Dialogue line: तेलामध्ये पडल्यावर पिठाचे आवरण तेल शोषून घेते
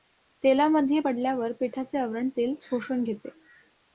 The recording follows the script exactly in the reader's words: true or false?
true